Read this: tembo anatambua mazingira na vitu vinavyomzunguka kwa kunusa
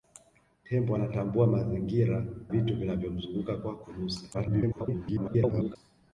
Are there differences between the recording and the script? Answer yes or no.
yes